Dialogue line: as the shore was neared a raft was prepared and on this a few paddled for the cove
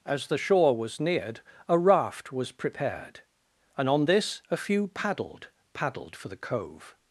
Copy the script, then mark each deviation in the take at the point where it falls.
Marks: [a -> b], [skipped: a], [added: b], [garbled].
as the shore was neared a raft was prepared and on this a few paddled [added: paddled] for the cove